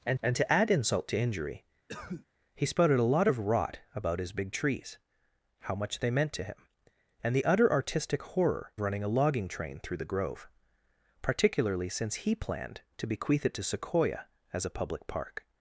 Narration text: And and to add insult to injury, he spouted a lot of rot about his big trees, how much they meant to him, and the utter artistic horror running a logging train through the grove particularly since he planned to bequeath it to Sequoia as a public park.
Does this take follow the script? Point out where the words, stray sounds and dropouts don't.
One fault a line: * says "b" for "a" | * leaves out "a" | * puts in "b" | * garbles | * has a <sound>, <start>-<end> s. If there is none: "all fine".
* has a cough, 1.9-2.3 s